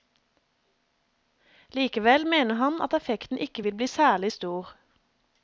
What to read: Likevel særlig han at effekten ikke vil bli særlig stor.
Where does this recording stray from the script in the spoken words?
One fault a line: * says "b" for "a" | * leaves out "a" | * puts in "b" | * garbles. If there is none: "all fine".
* says "mener" for "særlig"